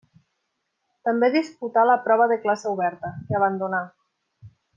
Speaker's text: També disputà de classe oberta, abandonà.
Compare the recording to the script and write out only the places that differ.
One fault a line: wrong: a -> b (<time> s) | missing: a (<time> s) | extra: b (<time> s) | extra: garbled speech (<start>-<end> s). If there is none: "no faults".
extra: la prova (1.9 s)
extra: que (3.3 s)